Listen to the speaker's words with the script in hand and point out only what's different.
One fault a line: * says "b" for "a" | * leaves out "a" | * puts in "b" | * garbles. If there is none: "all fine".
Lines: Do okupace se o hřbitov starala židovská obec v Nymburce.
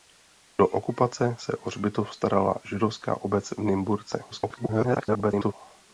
* garbles